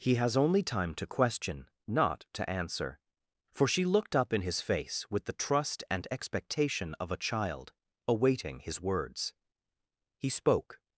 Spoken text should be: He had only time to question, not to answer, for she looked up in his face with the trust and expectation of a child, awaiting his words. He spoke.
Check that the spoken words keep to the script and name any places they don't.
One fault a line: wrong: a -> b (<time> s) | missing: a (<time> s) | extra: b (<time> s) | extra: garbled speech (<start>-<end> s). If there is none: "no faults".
wrong: had -> has (0.1 s)